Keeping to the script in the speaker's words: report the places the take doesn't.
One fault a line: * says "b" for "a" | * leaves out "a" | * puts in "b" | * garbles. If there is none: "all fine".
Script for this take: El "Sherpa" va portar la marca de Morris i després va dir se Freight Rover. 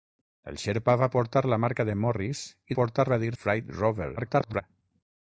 * says "portar" for "després"
* leaves out "se"
* garbles